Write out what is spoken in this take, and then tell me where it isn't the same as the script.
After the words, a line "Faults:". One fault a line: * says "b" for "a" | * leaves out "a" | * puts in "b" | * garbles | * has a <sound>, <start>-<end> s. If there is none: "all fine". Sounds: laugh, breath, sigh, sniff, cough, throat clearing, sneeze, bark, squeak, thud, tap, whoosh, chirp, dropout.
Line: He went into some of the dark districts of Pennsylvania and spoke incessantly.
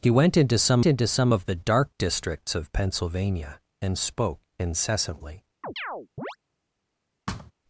He went into some into some of the dark districts of Pennsylvania and spoke incessantly.
Faults:
* puts in "into some"
* has a chirp, 5.6-6.4 s
* has a thud, 7.3-7.5 s